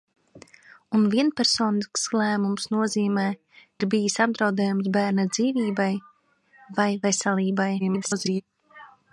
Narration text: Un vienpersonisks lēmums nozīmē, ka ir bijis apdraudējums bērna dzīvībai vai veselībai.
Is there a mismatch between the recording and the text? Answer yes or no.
yes